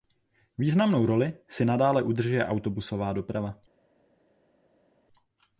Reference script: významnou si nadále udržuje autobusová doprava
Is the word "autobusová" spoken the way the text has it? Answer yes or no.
yes